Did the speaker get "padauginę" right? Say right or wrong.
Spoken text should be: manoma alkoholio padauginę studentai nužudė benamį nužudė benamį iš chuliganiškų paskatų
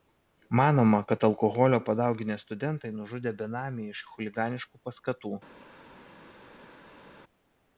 right